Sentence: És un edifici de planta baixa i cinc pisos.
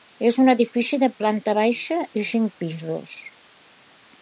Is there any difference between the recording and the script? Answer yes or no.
no